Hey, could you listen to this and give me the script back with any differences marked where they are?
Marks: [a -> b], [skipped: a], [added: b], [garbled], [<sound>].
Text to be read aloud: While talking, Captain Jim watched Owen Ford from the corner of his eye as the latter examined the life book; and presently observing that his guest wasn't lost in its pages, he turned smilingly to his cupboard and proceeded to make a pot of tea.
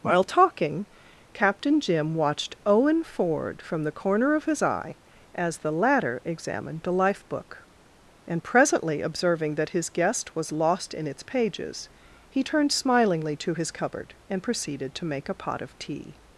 While talking, Captain Jim watched Owen Ford from the corner of his eye as the latter examined the life book; and presently observing that his guest [wasn't -> was] lost in its pages, he turned smilingly to his cupboard and proceeded to make a pot of tea.